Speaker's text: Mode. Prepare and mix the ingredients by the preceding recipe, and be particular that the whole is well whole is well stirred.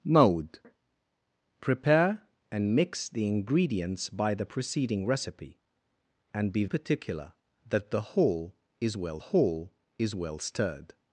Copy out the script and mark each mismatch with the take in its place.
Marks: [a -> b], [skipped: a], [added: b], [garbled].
Mode. Prepare and mix the ingredients by the preceding recipe, and be particular that the whole is well whole is well stirred.